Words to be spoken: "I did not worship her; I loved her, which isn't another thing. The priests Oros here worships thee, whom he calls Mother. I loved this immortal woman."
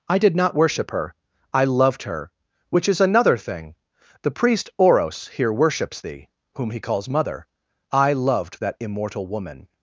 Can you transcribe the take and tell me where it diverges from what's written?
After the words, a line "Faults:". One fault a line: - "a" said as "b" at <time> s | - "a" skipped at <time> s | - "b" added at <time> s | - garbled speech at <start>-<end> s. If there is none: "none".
"I did not worship her; I loved her, which is another thing. The priest Oros here worships thee, whom he calls Mother. I loved that immortal woman."
Faults:
- "isn't" said as "is" at 2.9 s
- "priests" said as "priest" at 4.3 s
- "this" said as "that" at 8.6 s